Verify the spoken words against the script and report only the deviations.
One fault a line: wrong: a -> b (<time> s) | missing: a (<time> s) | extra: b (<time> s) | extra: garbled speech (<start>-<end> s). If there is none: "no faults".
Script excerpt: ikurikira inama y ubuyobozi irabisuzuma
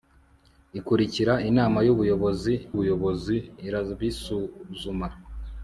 extra: ubuyobozi (2.7 s)